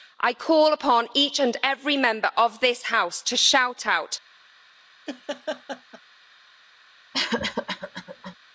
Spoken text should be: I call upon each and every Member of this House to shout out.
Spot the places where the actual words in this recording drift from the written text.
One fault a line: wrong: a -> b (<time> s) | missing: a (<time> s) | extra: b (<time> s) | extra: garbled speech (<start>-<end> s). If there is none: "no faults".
no faults